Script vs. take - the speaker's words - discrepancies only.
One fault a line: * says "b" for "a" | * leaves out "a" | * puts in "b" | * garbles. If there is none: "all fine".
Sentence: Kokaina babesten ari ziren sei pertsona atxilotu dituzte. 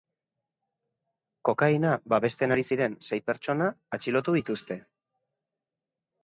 all fine